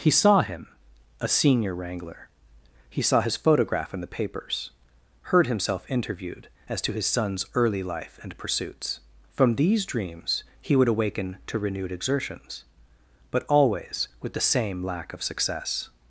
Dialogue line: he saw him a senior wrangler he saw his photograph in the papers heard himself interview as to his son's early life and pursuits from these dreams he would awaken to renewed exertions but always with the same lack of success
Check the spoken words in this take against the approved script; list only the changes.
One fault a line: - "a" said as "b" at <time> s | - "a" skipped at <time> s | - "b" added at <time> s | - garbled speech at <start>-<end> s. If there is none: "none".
- "interview" said as "interviewed" at 5.9 s